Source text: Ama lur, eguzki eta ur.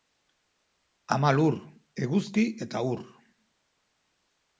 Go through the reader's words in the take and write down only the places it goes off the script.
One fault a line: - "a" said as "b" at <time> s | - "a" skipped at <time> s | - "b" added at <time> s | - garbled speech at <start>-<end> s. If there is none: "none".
none